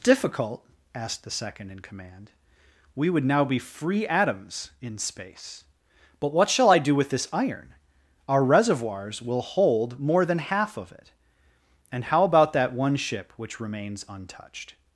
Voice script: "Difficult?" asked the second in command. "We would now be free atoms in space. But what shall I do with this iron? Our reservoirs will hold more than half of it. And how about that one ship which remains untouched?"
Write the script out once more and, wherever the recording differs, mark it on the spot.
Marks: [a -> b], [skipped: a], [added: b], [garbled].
"Difficult?" asked the second in command. "We would now be free atoms in space. But what shall I do with this iron? Our reservoirs will hold more than half of it. And how about that one ship which remains untouched?"